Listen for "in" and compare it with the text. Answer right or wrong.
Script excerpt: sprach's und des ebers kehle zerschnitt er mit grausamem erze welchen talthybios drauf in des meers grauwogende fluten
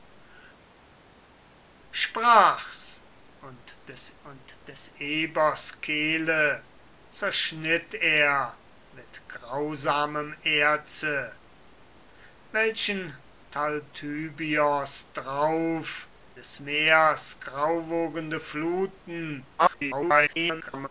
wrong